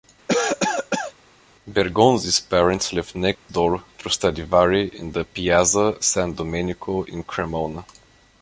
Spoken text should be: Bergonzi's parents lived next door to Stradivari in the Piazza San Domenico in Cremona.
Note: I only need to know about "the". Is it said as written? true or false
true